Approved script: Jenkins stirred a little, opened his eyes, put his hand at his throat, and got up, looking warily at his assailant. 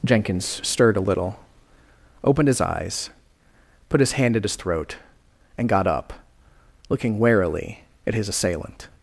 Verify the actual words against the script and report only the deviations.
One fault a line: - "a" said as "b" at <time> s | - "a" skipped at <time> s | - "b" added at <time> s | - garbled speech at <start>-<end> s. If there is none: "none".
none